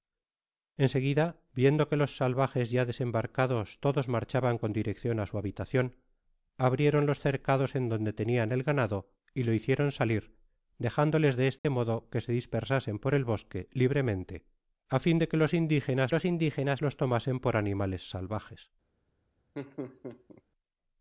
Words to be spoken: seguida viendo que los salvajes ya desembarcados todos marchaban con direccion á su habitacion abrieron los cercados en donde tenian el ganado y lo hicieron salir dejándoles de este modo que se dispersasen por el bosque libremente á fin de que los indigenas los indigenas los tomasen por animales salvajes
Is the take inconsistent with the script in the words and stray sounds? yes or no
yes